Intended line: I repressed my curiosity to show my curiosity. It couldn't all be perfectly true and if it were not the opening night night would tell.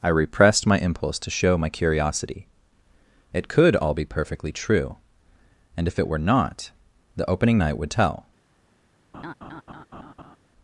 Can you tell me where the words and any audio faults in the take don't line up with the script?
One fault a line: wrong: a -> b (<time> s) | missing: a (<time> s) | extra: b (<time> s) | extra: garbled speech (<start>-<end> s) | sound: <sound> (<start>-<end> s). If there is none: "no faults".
wrong: curiosity -> impulse (0.8 s)
wrong: couldn't -> could (3.5 s)
missing: night (7.8 s)
sound: laugh (9.1-10.4 s)